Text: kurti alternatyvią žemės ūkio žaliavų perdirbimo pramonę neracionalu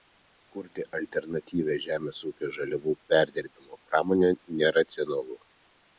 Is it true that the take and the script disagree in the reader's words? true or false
false